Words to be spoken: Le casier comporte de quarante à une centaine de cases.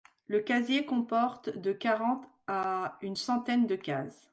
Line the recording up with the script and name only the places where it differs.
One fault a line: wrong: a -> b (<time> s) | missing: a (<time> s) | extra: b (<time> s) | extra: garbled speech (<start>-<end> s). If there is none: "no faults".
no faults